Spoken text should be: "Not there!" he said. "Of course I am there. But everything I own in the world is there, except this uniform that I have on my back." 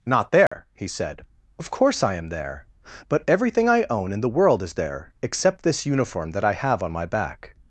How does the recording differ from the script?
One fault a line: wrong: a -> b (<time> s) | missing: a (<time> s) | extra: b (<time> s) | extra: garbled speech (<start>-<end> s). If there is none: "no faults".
no faults